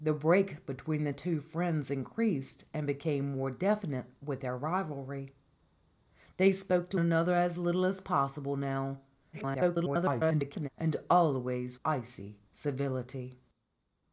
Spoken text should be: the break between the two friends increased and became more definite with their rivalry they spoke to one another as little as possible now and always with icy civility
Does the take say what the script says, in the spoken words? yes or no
no